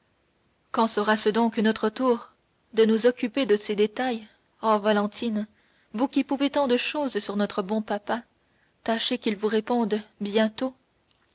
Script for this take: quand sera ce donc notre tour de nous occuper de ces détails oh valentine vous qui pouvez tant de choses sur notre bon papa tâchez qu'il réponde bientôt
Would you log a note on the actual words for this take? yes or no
yes